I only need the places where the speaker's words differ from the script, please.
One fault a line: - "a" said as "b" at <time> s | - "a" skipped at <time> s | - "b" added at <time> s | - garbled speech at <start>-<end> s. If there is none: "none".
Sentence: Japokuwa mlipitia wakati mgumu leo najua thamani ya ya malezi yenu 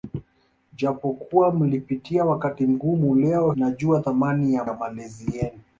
none